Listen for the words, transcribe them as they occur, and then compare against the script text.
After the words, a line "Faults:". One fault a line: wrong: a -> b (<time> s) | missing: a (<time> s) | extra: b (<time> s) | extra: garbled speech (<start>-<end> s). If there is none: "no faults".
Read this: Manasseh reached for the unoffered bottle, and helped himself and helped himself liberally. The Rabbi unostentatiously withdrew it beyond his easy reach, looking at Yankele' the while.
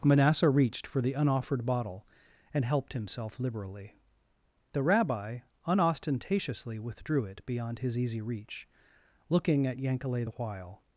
Manasseh reached for the unoffered bottle, and helped himself liberally. The Rabbi unostentatiously withdrew it beyond his easy reach, looking at Yankele' the while.
Faults:
missing: and helped himself (3.4 s)